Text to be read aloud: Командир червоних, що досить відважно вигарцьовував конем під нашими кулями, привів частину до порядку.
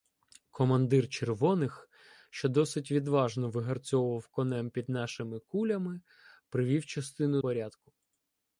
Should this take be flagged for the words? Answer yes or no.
yes